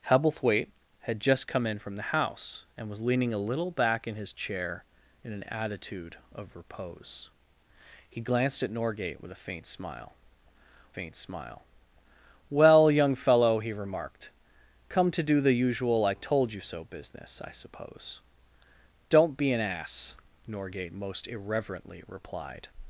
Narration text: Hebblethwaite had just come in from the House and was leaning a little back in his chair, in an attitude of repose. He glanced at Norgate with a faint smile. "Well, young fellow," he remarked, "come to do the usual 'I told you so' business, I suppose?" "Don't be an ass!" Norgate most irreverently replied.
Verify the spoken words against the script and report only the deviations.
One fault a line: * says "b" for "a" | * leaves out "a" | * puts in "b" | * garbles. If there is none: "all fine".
* puts in "faint smile"